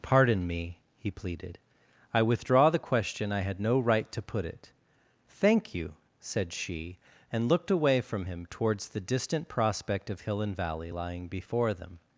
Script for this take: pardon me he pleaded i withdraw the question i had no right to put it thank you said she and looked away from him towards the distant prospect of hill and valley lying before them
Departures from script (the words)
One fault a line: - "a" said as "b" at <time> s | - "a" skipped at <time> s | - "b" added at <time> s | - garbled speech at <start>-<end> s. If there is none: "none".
none